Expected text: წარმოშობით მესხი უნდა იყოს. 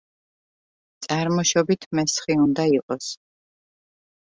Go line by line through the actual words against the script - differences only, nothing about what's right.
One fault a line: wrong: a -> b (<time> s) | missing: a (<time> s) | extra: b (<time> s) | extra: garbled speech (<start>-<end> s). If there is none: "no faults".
no faults